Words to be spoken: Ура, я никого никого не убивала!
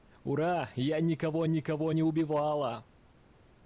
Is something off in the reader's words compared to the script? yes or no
no